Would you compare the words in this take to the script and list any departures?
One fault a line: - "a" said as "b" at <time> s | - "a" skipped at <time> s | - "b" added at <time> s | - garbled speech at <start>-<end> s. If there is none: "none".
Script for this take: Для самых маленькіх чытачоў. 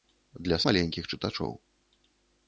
- "самых" skipped at 0.6 s